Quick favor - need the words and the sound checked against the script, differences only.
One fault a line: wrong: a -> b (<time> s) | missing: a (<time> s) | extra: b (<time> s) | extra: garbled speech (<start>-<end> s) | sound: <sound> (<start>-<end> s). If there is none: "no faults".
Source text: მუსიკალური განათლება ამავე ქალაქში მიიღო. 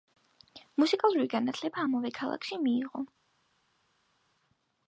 no faults